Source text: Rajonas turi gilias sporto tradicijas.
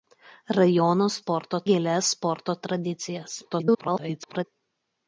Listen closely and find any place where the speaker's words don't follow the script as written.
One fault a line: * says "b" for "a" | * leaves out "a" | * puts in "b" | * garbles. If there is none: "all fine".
* says "sporto" for "turi"
* garbles